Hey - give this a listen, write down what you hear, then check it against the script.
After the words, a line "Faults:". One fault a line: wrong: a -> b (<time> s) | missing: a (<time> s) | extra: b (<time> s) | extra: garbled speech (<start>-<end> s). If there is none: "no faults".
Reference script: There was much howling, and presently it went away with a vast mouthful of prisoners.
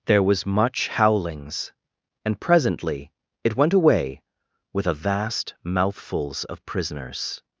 There was much howlings, and presently it went away with a vast mouthfuls of prisoners.
Faults:
wrong: howling -> howlings (0.9 s)
wrong: mouthful -> mouthfuls (5.6 s)